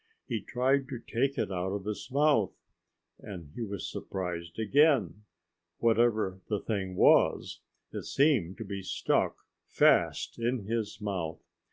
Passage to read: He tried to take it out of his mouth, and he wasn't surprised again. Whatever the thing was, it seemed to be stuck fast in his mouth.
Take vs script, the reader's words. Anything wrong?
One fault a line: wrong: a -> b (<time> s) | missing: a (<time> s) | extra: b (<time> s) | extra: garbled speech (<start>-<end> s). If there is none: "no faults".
wrong: wasn't -> was (3.6 s)